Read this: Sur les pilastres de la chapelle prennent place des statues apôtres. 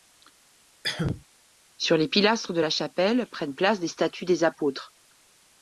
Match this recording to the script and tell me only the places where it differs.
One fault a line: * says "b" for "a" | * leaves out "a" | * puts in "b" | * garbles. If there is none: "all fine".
* puts in "des"